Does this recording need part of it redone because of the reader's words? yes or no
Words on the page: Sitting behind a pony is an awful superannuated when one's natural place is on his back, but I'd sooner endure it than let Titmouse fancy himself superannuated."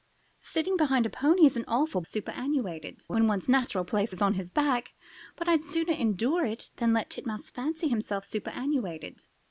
no